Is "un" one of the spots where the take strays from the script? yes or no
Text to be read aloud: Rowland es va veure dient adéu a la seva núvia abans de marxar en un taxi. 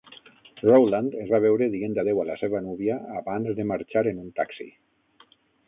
no